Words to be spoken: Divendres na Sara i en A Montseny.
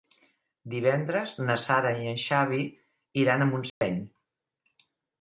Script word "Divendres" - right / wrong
right